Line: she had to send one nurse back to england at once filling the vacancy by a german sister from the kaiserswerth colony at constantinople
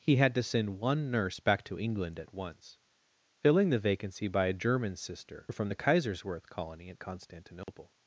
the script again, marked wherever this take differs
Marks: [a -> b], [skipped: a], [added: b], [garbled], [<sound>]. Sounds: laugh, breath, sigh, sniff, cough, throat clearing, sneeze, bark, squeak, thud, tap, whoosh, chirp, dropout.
[she -> he] had to send one nurse back to england at once filling the vacancy by a german sister from the kaiserswerth colony at constantinople [dropout]